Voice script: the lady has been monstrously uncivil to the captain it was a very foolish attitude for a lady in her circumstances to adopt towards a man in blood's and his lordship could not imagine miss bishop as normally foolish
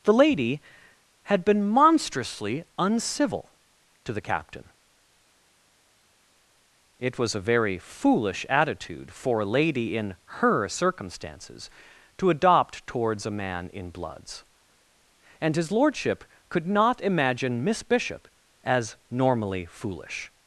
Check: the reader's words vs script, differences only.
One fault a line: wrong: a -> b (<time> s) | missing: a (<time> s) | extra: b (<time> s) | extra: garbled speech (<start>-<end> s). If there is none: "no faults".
wrong: has -> had (1.2 s)